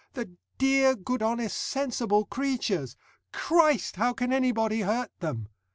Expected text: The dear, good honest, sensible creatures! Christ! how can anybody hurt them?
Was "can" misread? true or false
false